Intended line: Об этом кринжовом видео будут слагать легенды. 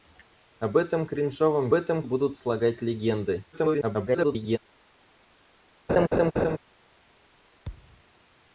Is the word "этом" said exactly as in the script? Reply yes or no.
yes